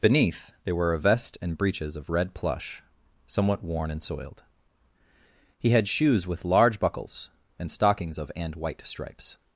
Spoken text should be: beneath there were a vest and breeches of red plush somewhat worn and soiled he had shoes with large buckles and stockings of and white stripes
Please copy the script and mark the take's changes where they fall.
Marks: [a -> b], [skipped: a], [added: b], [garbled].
beneath there were a vest and breeches of red plush somewhat worn and soiled he had shoes with large buckles and stockings of and white stripes